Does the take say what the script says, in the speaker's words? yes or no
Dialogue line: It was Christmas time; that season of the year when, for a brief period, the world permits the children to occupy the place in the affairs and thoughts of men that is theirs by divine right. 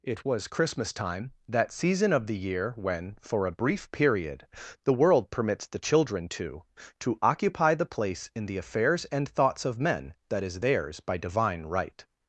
no